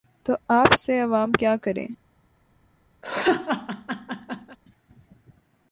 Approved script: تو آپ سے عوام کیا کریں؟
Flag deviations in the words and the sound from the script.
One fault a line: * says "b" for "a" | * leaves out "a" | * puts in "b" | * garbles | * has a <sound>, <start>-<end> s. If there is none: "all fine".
* has a laugh, 3.0-4.6 s